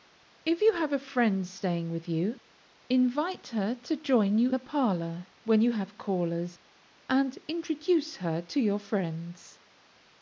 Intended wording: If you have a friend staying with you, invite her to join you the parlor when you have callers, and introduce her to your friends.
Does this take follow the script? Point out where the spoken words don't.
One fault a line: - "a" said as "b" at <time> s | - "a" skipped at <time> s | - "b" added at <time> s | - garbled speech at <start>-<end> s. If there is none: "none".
none